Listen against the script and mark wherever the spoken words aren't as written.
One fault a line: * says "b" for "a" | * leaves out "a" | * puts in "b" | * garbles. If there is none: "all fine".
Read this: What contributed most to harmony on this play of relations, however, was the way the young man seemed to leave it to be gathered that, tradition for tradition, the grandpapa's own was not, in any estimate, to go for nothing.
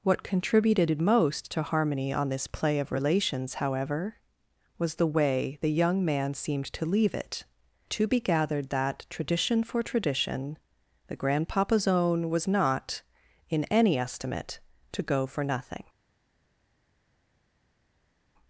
all fine